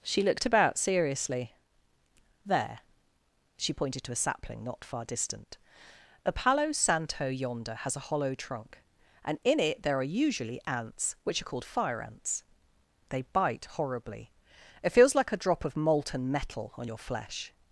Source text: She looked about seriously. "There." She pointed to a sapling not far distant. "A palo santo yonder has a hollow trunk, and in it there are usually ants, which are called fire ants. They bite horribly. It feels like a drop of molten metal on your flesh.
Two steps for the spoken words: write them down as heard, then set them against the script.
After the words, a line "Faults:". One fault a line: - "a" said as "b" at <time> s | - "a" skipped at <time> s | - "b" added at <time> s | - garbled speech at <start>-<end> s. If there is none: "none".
She looked about seriously. "There." She pointed to a sapling not far distant. "A palo santo yonder has a hollow trunk, and in it there are usually ants, which are called fire ants. They bite horribly. It feels like a drop of molten metal on your flesh.
Faults:
none